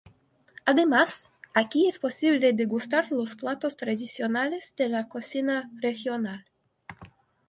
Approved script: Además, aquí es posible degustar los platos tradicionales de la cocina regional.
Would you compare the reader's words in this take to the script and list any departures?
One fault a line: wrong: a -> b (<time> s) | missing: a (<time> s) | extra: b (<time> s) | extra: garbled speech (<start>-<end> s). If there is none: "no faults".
no faults